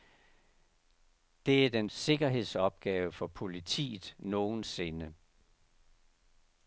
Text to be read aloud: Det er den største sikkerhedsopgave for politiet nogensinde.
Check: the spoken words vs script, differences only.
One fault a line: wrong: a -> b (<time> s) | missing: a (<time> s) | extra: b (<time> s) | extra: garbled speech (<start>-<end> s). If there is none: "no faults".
missing: største (1.9 s)